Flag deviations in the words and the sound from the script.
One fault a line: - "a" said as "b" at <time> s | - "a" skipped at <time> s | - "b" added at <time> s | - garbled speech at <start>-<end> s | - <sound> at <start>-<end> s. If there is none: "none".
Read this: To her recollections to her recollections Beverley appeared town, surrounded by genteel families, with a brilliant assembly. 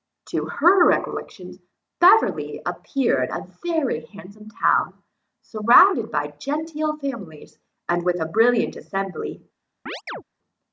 - "to her recollections Beverley appeared" said as "Beverley appeared a very handsome" at 2.0 s
- "and" added at 7.9 s
- chirp at 9.9-10.2 s